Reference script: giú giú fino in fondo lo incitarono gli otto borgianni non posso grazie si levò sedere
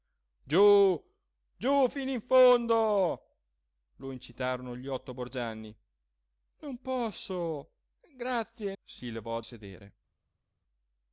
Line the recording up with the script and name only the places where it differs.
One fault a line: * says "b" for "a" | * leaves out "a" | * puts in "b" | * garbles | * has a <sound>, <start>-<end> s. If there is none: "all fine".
all fine